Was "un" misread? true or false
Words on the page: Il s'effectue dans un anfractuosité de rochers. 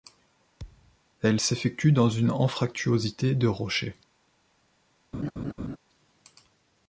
true